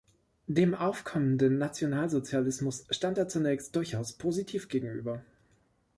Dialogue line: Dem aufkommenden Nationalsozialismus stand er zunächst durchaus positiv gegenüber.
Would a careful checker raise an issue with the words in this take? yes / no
no